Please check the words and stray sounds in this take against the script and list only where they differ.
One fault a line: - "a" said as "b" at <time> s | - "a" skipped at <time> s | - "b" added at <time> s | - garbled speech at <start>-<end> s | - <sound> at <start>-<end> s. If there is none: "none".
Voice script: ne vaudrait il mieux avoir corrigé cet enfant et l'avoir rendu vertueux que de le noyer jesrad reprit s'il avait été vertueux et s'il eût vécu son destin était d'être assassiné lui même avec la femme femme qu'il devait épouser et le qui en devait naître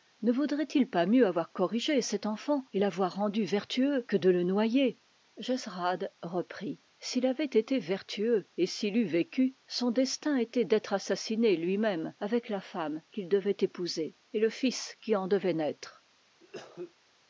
- "pas" added at 0.9 s
- "femme" skipped at 13.0 s
- "fils" added at 14.5 s
- cough at 16.4-16.9 s